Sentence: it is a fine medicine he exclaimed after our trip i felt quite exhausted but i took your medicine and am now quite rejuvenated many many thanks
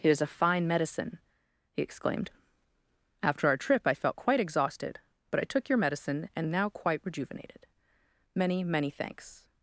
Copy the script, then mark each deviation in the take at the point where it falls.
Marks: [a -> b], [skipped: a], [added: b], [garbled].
it is a fine medicine he exclaimed after our trip i felt quite exhausted but i took your medicine and [skipped: am] now quite rejuvenated many many thanks